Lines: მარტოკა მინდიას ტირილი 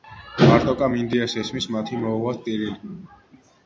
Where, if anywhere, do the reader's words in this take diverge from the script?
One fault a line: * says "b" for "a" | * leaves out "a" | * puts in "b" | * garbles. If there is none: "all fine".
* puts in "ესმის მათი მოუვათ"